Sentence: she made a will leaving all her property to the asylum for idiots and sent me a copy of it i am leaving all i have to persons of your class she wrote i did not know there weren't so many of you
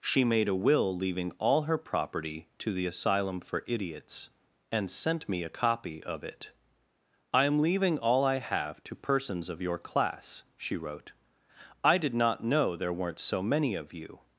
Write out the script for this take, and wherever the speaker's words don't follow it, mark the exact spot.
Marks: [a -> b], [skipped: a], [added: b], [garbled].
she made a will leaving all her property to the asylum for idiots and sent me a copy of it i am leaving all i have to persons of your class she wrote i did not know there weren't so many of you